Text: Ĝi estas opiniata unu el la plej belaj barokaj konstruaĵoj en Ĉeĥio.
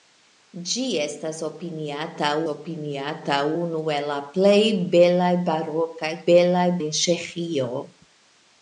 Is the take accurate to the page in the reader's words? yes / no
no